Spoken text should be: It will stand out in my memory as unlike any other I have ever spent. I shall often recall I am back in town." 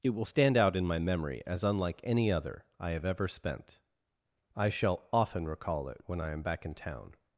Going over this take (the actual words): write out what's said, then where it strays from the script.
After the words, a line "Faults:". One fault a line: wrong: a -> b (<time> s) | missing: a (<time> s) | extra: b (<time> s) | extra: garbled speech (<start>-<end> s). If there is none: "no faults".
It will stand out in my memory as unlike any other I have ever spent. I shall often recall it when I am back in town."
Faults:
extra: it when (5.9 s)